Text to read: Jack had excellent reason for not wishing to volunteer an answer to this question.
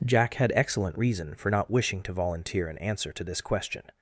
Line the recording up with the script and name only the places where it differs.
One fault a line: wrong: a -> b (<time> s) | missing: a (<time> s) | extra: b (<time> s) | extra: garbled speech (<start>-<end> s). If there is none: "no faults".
no faults